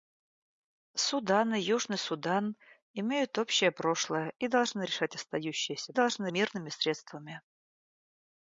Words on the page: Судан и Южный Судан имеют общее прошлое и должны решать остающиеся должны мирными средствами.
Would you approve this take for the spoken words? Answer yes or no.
yes